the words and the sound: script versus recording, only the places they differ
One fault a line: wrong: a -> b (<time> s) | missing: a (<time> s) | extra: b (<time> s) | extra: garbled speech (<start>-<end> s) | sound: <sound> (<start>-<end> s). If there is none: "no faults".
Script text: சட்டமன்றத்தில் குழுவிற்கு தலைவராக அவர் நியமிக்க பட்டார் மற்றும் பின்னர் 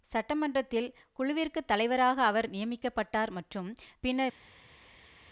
no faults